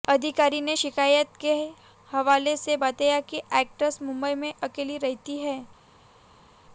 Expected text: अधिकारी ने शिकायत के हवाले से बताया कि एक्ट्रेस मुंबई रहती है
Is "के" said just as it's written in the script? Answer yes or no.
yes